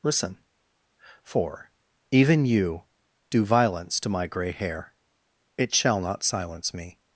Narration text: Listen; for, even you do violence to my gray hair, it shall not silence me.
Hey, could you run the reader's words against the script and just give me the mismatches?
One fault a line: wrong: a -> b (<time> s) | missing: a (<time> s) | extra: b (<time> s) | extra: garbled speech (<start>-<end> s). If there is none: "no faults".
no faults